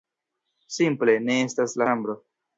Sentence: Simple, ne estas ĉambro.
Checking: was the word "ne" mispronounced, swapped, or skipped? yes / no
no